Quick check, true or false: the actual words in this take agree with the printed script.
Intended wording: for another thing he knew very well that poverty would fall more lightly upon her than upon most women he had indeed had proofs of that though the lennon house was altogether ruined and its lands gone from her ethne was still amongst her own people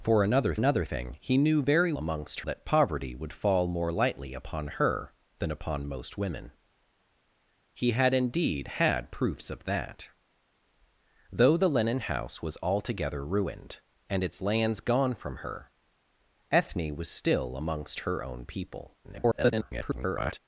false